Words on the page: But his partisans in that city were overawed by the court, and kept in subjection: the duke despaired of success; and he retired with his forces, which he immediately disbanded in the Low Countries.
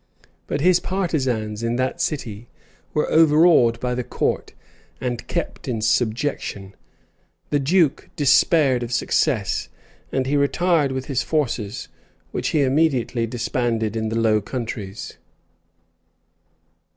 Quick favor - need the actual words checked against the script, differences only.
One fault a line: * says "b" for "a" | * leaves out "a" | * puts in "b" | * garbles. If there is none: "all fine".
all fine